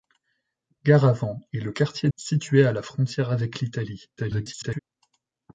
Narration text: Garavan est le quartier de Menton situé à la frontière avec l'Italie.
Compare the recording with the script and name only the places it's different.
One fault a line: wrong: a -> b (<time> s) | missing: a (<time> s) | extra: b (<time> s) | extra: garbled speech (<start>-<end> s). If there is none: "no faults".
missing: de Menton (2.1 s)
extra: garbled speech (4.2-4.8 s)